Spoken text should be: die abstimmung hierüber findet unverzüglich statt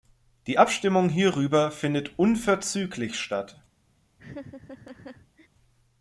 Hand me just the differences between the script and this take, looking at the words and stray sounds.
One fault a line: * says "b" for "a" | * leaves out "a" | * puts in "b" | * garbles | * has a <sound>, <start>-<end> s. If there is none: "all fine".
* has a laugh, 4.2-5.5 s